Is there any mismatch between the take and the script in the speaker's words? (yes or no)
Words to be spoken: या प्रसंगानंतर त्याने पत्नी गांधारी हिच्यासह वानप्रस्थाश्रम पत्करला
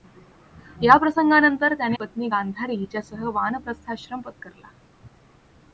no